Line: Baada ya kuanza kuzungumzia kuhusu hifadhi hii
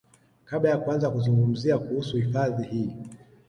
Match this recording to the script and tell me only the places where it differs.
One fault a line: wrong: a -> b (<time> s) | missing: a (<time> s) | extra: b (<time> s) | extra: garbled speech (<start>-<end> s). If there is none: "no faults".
wrong: Baada -> Kabla (0.5 s)